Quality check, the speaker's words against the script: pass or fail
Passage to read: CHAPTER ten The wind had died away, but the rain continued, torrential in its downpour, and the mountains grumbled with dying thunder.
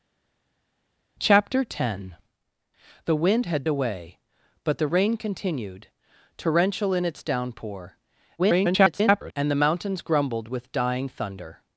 fail